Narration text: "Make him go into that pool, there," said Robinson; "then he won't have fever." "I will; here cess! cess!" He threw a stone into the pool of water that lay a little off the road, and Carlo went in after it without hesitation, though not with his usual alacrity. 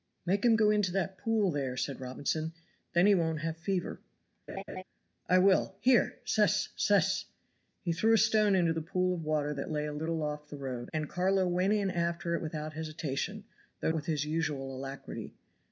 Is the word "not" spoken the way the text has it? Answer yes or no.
no